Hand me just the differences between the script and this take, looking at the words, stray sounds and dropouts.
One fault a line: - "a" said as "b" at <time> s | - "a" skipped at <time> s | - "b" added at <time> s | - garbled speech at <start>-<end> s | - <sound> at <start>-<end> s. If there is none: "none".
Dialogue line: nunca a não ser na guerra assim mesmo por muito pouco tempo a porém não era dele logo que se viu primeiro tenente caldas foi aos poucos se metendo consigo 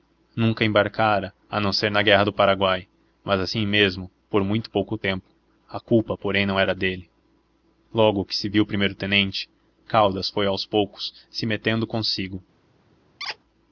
- "embarcara" added at 0.7 s
- "do paraguai mas" added at 2.2 s
- "culpa" added at 5.8 s
- squeak at 13.2-13.4 s